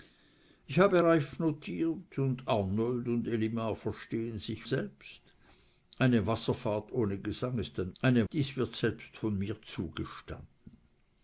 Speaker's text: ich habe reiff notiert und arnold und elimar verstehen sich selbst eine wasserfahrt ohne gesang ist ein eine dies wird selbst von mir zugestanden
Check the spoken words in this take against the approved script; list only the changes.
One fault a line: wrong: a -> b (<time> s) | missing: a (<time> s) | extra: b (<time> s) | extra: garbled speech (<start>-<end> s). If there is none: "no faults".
no faults